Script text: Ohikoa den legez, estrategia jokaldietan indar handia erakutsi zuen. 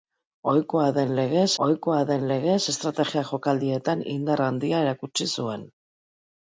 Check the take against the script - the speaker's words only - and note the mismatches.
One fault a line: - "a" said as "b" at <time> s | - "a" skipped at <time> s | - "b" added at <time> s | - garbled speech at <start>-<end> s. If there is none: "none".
- "ohikoa den legez" added at 1.6 s